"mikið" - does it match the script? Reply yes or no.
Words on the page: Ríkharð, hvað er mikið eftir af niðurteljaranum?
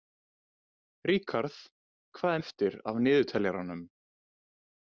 no